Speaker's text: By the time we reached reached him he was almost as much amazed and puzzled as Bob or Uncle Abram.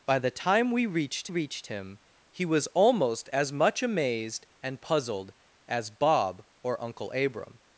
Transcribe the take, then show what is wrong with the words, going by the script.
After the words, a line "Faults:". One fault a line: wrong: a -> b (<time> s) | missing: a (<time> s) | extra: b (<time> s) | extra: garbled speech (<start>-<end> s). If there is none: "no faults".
By the time we reached reached him he was almost as much amazed and puzzled as Bob or Uncle Abram.
Faults:
no faults